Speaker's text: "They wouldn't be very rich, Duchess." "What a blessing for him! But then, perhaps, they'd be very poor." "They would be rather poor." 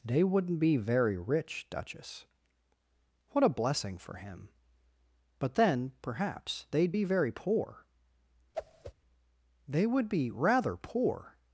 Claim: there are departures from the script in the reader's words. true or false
false